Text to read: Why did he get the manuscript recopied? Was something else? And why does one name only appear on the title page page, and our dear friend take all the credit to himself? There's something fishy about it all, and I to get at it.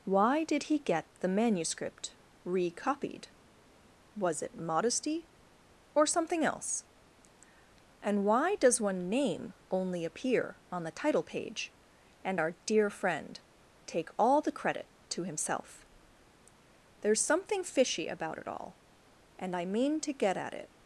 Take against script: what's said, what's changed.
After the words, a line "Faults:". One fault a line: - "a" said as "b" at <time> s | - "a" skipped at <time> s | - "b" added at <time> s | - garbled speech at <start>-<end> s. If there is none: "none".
Why did he get the manuscript recopied? Was it modesty or something else? And why does one name only appear on the title page, and our dear friend take all the credit to himself? There's something fishy about it all, and I mean to get at it.
Faults:
- "it modesty or" added at 4.4 s
- "page" skipped at 11.8 s
- "mean" added at 19.6 s